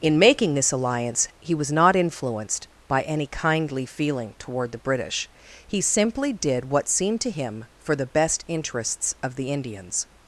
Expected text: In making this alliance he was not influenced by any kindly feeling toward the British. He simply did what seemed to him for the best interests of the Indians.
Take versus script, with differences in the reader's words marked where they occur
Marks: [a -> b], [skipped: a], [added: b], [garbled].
In making this alliance he was not influenced by any kindly feeling toward the British. He simply did what seemed to him for the best interests of the Indians.